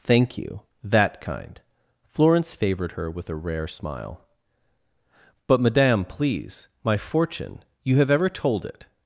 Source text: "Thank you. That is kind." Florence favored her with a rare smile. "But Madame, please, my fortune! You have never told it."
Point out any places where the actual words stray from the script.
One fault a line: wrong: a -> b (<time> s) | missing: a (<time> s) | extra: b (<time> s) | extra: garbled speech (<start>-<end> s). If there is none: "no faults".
missing: is (1.2 s)
wrong: never -> ever (8.1 s)